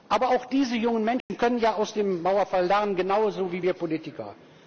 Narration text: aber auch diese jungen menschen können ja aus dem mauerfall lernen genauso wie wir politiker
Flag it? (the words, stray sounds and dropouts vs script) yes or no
yes